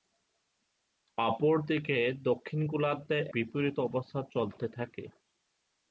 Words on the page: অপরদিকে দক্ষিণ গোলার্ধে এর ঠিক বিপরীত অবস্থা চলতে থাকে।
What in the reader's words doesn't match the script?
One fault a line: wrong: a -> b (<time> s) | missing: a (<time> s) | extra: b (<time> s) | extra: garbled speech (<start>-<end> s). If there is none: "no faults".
missing: এর ঠিক (3.2 s)